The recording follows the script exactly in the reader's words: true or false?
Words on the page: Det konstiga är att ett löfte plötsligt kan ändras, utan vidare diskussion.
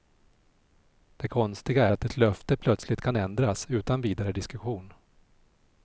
false